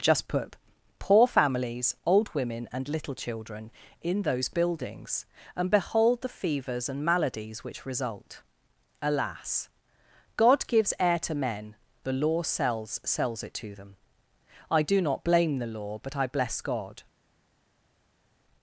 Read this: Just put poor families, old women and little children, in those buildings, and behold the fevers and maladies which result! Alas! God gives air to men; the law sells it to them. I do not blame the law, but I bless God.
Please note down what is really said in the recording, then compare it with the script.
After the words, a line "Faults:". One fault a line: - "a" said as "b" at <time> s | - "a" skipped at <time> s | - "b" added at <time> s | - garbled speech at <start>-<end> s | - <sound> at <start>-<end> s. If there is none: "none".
Just put poor families, old women and little children, in those buildings, and behold the fevers and maladies which result! Alas! God gives air to men; the law sells sells it to them. I do not blame the law, but I bless God.
Faults:
- "sells" added at 13.0 s